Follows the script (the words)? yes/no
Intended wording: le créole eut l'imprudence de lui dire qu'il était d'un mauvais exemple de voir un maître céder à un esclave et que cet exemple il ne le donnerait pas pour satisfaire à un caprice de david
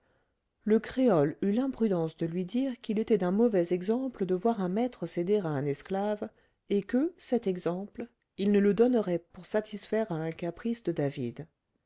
no